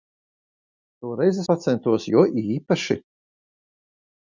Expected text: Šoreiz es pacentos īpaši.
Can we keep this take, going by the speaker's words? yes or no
no